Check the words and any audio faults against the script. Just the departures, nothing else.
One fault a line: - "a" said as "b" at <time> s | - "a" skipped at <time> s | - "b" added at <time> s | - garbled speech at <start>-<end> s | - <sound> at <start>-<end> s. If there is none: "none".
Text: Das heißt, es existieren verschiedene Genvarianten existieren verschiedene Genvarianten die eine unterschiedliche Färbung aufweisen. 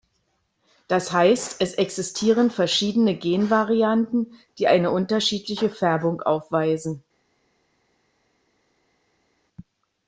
- "existieren verschiedene Genvarianten" skipped at 4.3 s